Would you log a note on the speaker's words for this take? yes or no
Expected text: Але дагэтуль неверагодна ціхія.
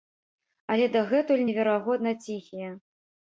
no